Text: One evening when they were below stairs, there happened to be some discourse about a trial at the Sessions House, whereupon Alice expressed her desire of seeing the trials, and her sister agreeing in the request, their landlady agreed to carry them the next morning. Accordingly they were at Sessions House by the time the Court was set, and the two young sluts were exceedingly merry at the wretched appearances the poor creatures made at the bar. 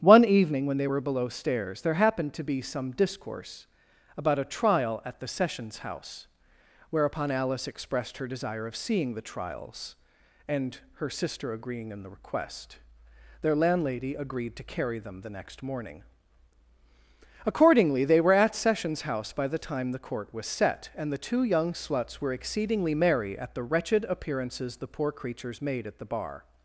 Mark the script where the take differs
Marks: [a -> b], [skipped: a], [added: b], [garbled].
One evening when they were below stairs, there happened to be some discourse about a trial at the Sessions House, whereupon Alice expressed her desire of seeing the trials, and her sister agreeing in the request, their landlady agreed to carry them the next morning. Accordingly they were at Sessions House by the time the Court was set, and the two young sluts were exceedingly merry at the wretched appearances the poor creatures made at the bar.